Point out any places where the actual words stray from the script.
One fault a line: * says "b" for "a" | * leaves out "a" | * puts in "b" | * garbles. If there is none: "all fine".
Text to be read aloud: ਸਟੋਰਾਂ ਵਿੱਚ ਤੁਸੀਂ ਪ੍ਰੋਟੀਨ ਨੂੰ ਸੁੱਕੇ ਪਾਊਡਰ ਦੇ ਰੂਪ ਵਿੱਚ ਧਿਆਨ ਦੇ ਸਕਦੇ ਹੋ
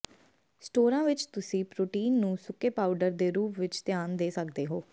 all fine